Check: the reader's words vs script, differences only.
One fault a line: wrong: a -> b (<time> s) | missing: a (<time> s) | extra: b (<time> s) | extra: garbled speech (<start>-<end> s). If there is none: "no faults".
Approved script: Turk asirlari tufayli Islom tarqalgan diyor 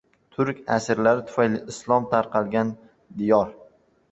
no faults